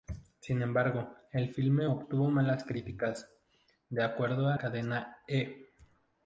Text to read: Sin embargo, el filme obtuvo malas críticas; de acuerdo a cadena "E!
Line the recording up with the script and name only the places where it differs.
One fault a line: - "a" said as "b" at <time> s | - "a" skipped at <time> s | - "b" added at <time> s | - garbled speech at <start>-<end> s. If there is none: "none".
none